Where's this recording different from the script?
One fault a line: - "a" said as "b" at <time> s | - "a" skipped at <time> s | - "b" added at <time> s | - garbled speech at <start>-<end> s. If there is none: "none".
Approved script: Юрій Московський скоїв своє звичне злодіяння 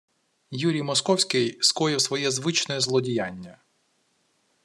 none